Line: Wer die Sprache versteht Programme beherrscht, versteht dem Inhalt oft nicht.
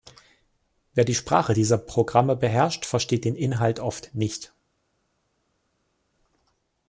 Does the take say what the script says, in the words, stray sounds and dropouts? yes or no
no